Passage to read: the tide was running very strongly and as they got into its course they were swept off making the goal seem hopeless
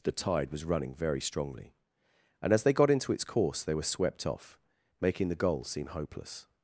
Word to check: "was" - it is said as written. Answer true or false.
true